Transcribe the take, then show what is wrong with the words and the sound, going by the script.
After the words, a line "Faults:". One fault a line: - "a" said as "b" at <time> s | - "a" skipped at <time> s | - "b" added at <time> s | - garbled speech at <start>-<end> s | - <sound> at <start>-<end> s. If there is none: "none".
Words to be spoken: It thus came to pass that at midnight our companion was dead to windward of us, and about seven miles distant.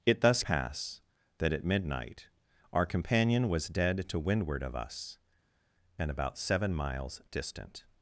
It thus pass that at midnight our companion was dead to windward of us, and about seven miles distant.
Faults:
- "came to" skipped at 0.4 s